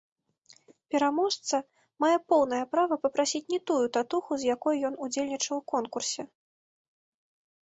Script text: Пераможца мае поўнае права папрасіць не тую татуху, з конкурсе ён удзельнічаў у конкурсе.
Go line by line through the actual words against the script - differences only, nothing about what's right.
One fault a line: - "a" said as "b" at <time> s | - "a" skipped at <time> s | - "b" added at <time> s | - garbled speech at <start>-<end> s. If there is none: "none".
- "конкурсе" said as "якой" at 4.5 s